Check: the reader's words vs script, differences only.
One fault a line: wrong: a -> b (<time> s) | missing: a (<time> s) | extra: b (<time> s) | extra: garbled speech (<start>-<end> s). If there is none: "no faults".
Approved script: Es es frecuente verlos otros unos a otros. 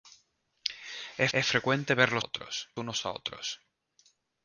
no faults